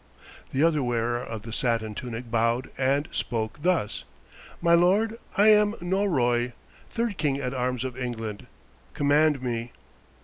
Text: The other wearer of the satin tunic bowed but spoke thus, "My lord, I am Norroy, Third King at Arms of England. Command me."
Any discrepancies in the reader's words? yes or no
yes